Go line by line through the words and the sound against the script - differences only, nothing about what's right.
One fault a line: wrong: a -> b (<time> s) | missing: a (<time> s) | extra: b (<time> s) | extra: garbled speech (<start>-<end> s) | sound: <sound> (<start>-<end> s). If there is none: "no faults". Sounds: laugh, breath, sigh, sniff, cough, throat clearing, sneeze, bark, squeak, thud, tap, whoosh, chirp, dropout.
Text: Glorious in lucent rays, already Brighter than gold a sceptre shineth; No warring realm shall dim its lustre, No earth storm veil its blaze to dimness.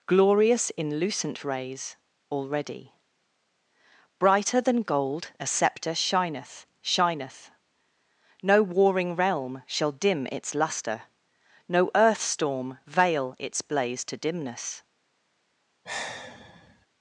extra: shineth (6.8 s)
sound: sigh (15.8-16.9 s)